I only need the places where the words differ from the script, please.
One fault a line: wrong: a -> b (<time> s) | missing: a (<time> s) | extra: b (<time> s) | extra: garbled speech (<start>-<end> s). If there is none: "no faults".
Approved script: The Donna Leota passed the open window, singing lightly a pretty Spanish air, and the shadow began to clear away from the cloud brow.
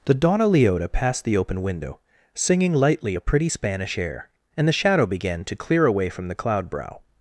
no faults